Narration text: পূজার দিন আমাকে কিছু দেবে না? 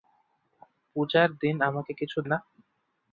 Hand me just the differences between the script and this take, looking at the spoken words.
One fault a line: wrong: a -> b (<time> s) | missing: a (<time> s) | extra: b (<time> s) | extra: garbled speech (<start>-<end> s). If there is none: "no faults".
missing: দেবে (2.2 s)